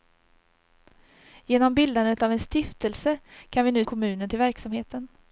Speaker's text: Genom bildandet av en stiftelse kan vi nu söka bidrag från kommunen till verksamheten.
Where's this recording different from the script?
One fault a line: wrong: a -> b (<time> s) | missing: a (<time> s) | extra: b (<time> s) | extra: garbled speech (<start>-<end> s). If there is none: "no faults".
missing: söka bidrag från (3.9 s)